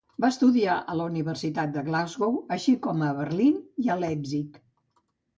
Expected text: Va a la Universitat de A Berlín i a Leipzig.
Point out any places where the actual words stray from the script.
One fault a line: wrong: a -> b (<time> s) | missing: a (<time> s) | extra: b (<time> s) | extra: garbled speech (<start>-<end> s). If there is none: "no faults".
extra: estudiar (0.3 s)
extra: Glasgow així com (1.9 s)